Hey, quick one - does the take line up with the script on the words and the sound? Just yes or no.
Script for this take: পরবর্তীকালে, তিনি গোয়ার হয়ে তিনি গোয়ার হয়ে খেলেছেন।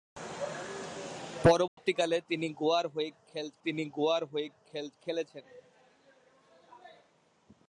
no